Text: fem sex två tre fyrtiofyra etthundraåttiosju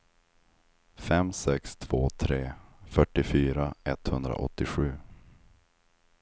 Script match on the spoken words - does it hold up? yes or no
yes